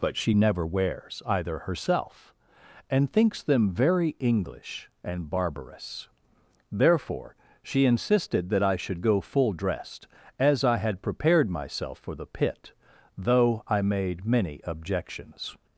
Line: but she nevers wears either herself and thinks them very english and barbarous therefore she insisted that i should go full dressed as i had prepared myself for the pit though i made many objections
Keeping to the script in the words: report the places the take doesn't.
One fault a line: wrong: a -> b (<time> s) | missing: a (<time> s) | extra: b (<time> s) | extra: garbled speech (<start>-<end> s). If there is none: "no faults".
wrong: nevers -> never (0.3 s)